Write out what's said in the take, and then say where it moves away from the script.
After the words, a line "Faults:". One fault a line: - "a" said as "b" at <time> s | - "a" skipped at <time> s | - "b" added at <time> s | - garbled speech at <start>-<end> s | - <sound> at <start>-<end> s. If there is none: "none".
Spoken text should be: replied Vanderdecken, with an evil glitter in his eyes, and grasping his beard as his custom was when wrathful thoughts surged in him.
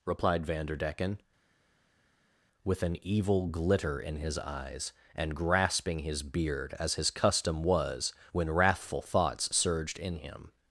replied Vanderdecken, with an evil glitter in his eyes, and grasping his beard as his custom was when wrathful thoughts surged in him.
Faults:
none